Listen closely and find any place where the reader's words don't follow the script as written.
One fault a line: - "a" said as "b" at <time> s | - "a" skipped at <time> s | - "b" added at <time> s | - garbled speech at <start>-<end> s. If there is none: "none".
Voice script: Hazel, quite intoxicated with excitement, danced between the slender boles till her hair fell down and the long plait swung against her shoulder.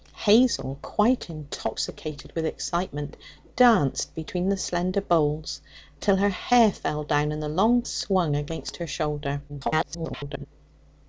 - "plait" skipped at 7.8 s
- garbled speech at 9.5-10.5 s